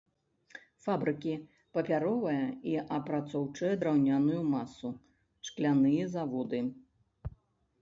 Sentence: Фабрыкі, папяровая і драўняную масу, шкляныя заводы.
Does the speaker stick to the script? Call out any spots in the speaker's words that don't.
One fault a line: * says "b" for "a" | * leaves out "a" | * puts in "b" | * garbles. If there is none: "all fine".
* puts in "апрацоўчая"